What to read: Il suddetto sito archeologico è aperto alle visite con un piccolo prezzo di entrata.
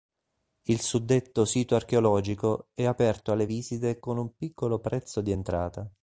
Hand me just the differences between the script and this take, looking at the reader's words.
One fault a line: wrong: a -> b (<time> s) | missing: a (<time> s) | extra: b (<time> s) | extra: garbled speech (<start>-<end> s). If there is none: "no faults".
no faults